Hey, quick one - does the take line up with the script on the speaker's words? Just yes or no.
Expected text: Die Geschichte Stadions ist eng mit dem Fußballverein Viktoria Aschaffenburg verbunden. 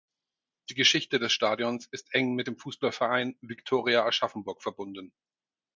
no